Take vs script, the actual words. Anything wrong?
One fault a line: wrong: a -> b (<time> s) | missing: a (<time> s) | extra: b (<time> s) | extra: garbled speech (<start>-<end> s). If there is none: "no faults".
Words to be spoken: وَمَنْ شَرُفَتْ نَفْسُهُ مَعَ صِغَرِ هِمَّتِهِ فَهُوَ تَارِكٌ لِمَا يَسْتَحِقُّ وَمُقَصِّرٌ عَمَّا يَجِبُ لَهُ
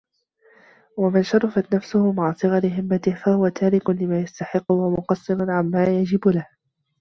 no faults